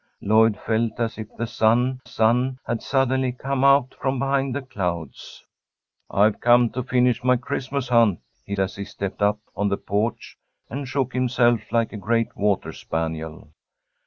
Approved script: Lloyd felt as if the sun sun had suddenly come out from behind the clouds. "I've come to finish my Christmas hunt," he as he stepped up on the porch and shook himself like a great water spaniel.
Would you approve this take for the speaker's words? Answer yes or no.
yes